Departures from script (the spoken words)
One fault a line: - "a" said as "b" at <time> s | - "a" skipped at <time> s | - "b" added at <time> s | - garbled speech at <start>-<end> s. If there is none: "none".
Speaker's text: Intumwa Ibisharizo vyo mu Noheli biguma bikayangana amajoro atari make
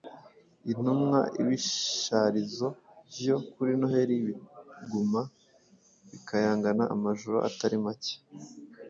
- "mu" said as "kuri" at 3.5 s